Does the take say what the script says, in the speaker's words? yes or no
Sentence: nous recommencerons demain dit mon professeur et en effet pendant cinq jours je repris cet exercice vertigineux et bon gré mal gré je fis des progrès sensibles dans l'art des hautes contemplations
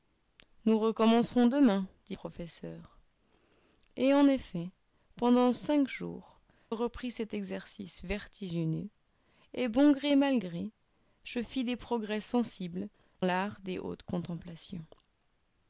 no